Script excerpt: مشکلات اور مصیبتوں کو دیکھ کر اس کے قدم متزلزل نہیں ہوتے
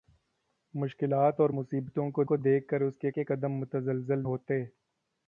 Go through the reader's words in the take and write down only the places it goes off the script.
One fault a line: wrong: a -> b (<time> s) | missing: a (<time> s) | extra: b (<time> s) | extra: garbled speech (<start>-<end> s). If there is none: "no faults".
extra: کو (2.2 s)
extra: کے (3.1 s)
missing: نہیں (4.3 s)